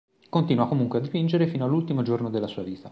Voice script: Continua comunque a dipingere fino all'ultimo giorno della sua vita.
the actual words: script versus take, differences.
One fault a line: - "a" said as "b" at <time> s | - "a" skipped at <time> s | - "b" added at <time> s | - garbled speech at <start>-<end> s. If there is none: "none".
none